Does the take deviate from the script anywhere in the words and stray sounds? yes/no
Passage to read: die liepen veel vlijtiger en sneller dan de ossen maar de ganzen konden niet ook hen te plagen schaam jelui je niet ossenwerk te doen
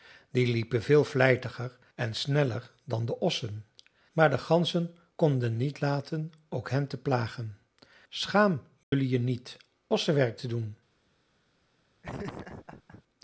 yes